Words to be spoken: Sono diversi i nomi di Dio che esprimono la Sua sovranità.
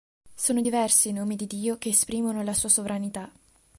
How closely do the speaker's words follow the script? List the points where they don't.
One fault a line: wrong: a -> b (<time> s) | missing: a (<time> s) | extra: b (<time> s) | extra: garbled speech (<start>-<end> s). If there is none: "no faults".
no faults